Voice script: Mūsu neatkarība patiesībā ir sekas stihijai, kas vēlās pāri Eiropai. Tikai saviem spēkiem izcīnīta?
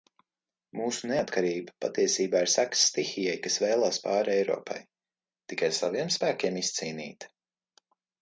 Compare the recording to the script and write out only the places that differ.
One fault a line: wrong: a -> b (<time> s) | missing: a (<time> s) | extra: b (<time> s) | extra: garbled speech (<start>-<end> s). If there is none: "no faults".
no faults